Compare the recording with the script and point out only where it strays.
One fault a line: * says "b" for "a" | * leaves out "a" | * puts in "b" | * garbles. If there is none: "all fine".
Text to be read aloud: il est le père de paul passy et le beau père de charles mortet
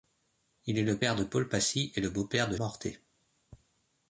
* leaves out "charles"